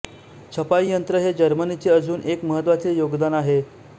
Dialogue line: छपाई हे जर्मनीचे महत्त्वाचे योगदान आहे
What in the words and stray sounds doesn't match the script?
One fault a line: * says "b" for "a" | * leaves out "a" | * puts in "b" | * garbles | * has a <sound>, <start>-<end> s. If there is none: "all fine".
* puts in "यंत्र"
* puts in "अजून एक"